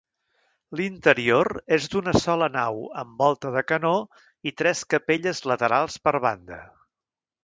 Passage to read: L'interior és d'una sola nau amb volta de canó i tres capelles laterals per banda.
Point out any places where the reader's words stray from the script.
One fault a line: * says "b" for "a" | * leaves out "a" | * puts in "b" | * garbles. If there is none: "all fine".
all fine